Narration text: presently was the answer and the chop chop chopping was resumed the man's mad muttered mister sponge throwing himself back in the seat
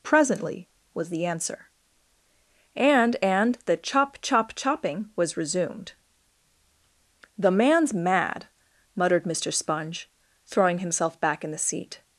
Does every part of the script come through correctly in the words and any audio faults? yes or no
no